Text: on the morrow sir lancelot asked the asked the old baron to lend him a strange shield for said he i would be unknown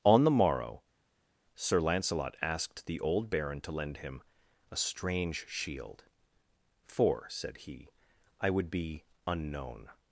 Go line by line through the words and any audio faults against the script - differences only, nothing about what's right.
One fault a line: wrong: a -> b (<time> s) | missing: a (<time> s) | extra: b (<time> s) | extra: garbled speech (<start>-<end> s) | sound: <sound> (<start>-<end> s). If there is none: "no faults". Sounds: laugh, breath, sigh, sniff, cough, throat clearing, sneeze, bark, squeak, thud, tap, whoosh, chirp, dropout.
missing: asked the (3.0 s)